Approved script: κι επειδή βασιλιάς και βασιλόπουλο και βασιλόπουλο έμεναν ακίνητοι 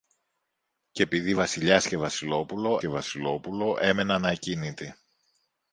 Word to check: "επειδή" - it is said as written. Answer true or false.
true